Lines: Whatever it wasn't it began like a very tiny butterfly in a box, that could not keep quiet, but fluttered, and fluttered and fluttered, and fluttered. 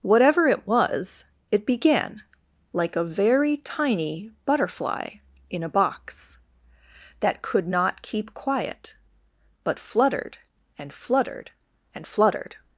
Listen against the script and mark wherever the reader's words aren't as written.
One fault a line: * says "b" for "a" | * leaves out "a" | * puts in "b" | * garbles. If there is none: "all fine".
* says "was" for "wasn't"
* leaves out "and fluttered"